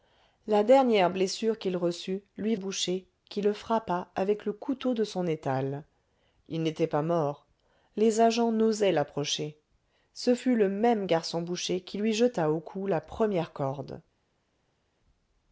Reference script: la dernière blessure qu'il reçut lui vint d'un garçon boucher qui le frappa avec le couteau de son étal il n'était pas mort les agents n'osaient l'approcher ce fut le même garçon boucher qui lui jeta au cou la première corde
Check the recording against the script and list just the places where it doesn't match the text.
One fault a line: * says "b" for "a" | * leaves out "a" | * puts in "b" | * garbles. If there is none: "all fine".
* leaves out "vint d'un garçon"